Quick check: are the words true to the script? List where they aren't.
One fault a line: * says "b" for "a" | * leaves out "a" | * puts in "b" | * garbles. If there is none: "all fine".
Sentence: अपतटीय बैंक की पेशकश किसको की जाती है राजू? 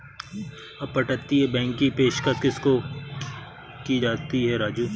all fine